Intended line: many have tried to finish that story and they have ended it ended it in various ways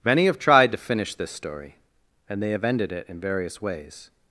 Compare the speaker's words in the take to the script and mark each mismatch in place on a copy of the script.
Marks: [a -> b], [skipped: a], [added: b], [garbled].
many have tried to finish [that -> this] story and they have ended it [skipped: ended it] in various ways